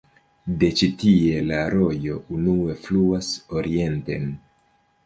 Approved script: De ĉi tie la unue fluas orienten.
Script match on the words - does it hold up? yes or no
no